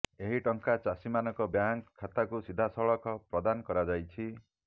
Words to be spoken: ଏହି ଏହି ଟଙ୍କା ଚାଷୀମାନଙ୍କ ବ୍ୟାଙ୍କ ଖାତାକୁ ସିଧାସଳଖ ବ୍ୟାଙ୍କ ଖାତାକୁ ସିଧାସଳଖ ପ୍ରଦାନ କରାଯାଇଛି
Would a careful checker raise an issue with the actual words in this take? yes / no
yes